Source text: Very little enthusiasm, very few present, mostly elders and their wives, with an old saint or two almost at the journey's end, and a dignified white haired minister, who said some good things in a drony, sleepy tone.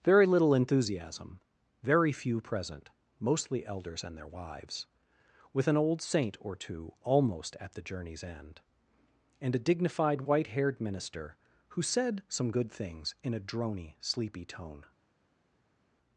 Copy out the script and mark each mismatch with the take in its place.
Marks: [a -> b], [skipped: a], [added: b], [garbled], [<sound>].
Very little enthusiasm, very few present, mostly elders and their wives, with an old saint or two almost at the journey's end, and a dignified white haired minister, who said some good things in a drony, sleepy tone.